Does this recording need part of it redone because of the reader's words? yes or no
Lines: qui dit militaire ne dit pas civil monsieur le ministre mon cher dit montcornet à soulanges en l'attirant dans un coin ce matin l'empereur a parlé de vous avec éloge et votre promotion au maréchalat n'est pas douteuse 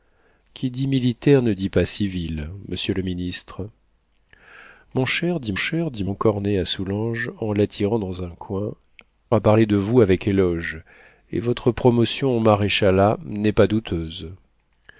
yes